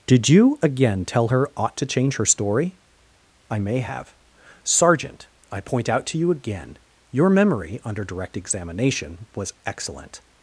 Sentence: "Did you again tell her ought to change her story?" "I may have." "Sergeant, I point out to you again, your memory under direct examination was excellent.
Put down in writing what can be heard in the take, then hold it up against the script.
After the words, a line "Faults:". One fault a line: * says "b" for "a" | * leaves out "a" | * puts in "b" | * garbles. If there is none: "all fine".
"Did you again tell her ought to change her story?" "I may have." "Sergeant, I point out to you again, your memory under direct examination was excellent.
Faults:
all fine